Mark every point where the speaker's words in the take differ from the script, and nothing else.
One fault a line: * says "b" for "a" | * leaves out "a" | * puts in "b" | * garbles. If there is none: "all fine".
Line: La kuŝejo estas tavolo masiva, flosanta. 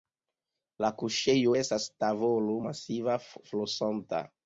all fine